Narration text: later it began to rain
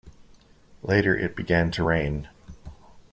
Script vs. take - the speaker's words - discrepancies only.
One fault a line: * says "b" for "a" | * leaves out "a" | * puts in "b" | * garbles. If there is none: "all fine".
all fine